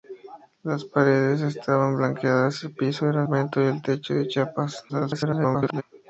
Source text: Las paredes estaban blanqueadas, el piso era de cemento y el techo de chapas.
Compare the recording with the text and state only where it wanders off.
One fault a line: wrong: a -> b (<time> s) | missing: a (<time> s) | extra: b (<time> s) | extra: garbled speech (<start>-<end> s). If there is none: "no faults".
missing: de (3.2 s)
extra: garbled speech (4.9-5.8 s)